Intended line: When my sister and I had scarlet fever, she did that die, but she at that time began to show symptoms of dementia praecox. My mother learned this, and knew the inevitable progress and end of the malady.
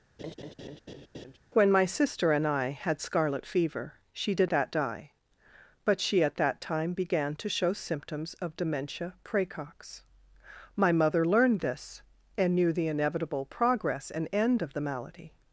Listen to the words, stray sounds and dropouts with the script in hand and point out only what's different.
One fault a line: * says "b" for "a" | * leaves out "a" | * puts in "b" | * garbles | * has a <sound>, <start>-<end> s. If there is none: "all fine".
* has a laugh, 0.2-1.4 s